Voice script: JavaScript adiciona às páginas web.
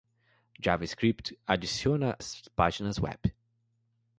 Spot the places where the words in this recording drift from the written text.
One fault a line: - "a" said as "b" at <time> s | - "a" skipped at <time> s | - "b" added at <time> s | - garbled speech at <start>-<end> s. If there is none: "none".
none